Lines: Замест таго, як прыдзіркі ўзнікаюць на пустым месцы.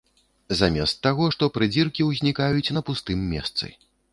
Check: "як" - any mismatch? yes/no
yes